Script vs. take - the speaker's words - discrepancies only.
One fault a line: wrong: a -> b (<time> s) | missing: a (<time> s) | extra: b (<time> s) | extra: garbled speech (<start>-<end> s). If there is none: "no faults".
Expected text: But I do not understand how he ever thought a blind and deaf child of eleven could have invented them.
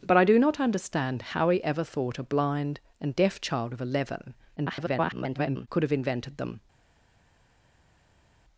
extra: garbled speech (4.6-5.7 s)